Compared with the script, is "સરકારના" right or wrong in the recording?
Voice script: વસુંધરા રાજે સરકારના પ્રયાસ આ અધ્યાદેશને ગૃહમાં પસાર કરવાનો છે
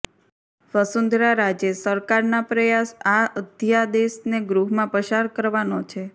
right